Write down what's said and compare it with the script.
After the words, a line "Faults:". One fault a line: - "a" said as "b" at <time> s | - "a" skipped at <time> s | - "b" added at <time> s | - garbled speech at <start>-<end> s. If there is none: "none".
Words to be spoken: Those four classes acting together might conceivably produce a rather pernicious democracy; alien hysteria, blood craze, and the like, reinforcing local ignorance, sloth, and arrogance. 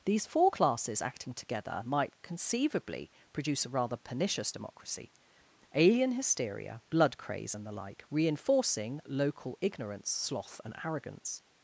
These four classes acting together might conceivably produce a rather pernicious democracy; alien hysteria, blood craze, and the like, reinforcing local ignorance, sloth, and arrogance.
Faults:
- "Those" said as "These" at 0.1 s